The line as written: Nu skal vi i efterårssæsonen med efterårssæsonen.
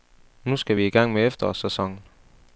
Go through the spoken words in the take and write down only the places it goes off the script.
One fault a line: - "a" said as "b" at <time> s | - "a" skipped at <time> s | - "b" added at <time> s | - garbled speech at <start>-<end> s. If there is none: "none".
- "efterårssæsonen" said as "gang" at 0.9 s